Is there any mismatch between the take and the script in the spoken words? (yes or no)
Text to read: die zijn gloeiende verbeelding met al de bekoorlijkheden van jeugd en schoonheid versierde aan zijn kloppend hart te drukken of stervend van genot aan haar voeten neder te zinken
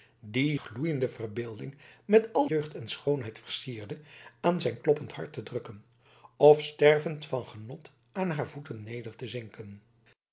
yes